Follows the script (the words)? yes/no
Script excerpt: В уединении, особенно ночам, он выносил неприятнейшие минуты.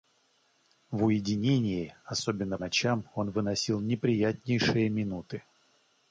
yes